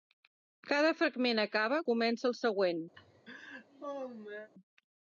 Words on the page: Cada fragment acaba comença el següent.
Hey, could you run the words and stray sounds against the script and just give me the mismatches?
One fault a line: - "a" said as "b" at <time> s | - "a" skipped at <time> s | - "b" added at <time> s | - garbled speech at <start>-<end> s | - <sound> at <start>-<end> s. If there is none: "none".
- laugh at 2.9-4.5 s